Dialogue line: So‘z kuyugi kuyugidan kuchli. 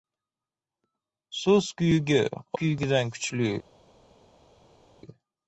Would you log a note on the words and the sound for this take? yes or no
no